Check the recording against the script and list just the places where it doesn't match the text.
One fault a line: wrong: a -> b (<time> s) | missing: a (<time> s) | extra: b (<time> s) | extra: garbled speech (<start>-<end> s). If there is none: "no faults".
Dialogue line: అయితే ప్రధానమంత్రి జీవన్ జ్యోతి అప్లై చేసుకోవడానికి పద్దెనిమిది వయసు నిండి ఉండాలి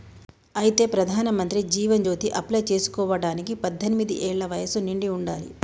extra: ఏళ్ల (4.3 s)